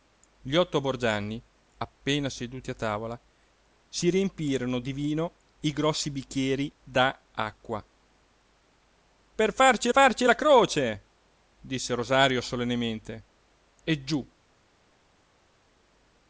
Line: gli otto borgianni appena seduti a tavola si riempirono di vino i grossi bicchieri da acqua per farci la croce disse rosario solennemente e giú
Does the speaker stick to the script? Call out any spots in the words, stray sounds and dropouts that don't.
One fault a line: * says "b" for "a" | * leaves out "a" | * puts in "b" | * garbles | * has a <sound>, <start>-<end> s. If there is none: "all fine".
* puts in "farci"